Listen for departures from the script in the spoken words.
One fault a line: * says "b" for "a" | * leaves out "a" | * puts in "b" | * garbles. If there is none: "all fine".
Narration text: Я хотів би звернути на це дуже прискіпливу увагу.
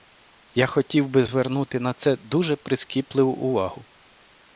all fine